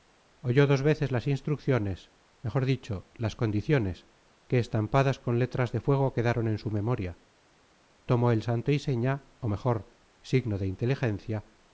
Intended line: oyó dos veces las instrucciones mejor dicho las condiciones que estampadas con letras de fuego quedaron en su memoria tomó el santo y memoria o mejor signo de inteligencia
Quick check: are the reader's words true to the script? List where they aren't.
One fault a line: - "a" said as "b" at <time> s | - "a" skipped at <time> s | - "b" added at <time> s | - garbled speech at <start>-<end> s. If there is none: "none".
- "memoria" said as "seña" at 8.8 s